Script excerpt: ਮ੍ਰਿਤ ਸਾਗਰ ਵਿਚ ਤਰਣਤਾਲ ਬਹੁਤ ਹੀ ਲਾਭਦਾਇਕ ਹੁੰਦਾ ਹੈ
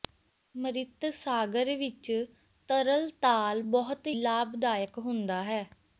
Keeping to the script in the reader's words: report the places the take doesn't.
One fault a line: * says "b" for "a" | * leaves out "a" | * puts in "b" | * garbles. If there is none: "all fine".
* leaves out "ਹੀ"